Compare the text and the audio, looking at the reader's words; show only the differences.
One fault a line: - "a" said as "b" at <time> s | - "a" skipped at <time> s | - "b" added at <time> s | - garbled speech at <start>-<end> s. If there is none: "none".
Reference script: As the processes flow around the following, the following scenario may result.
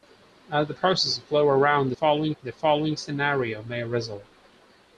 none